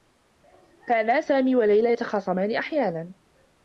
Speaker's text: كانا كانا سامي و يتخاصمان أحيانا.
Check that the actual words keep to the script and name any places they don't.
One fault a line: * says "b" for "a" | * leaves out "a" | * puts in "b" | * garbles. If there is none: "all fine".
* leaves out "كانا"
* puts in "ليلى"